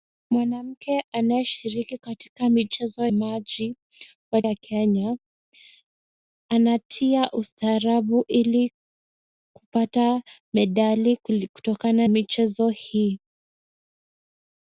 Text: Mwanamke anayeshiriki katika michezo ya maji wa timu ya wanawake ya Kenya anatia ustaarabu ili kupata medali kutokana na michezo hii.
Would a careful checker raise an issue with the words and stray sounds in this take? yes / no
yes